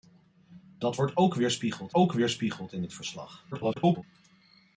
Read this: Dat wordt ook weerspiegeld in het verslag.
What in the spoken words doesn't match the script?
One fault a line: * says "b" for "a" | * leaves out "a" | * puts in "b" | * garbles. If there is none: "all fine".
* puts in "ook weerspiegeld"
* garbles